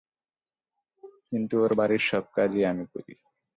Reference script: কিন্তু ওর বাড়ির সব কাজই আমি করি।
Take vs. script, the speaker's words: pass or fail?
pass